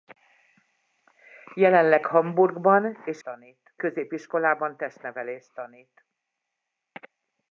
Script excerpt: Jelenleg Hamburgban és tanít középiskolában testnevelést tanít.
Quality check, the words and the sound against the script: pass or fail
pass